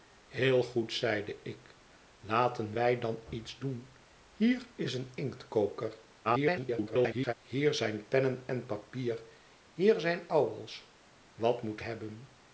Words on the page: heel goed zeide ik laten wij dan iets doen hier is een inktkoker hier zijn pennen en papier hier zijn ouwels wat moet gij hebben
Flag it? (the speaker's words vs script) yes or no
yes